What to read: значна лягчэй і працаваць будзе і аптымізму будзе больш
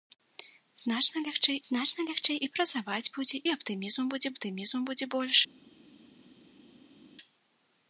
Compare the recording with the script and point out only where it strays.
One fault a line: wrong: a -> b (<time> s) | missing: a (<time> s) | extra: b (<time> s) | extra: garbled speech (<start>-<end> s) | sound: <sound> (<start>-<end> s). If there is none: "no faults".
extra: значна лягчэй (1.7 s)
extra: аптымізму будзе (4.3 s)